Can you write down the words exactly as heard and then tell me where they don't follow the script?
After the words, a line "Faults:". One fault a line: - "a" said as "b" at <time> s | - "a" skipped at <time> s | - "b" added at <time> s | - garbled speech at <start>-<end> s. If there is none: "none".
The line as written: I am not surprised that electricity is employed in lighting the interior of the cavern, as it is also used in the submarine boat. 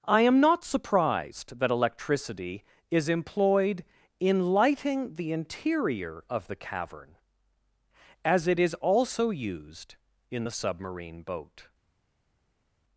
I am not surprised that electricity is employed in lighting the interior of the cavern, as it is also used in the submarine boat.
Faults:
none